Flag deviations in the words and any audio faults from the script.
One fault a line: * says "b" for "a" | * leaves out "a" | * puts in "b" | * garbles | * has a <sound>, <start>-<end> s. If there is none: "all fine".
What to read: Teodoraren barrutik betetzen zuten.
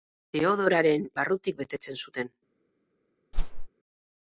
* has a whoosh, 3.3-3.7 s